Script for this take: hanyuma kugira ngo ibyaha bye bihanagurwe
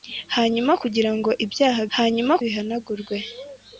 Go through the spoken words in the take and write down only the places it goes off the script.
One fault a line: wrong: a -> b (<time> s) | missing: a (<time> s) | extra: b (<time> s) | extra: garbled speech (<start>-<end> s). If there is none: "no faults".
wrong: bye -> hanyuma (2.0 s)